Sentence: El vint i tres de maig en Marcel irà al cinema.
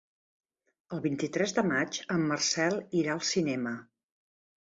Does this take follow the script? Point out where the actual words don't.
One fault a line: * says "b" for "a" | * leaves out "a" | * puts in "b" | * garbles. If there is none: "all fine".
all fine